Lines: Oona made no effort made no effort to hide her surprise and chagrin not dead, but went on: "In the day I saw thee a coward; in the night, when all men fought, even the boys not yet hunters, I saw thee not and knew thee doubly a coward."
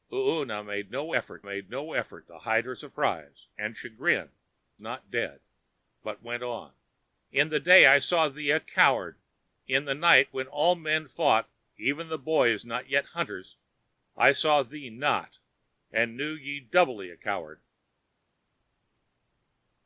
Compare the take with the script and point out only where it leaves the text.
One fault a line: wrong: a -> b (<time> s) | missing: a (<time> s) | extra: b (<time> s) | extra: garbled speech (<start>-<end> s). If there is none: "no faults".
no faults